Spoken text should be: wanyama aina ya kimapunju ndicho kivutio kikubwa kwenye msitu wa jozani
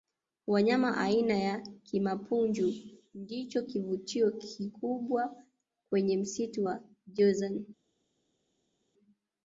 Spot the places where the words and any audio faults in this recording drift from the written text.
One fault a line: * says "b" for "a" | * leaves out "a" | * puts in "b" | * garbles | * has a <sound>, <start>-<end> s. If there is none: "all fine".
all fine